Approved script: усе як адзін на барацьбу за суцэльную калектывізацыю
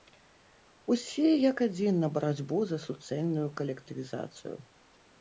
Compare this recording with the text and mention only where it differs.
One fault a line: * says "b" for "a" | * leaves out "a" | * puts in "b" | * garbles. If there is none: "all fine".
all fine